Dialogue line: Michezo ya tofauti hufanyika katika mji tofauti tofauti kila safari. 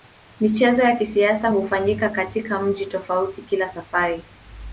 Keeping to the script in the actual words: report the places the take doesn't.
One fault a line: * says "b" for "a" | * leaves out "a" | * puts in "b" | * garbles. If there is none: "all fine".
* says "kisasa" for "tofauti"
* leaves out "tofauti"